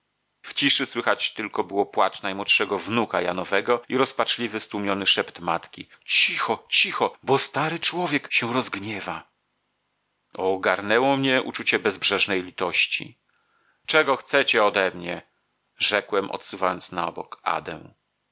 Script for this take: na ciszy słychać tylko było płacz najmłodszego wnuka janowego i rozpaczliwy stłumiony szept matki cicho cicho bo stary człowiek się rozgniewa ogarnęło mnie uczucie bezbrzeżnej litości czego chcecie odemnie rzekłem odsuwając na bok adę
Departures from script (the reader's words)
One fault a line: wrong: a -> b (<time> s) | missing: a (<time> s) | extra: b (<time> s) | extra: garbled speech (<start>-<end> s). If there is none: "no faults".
wrong: na -> w (0.4 s)